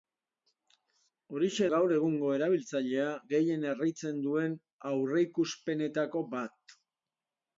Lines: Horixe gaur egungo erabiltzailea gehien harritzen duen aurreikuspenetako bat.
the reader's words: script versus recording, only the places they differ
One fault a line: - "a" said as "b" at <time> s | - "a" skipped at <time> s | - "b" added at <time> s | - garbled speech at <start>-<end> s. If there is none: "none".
none